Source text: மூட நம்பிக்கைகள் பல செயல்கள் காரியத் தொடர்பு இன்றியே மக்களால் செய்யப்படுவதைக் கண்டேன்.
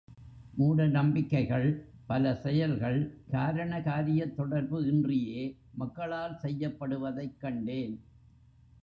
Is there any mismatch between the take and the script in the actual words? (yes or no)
yes